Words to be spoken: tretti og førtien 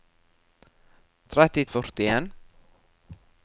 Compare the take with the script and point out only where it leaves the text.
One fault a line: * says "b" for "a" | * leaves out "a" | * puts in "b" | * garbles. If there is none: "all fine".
all fine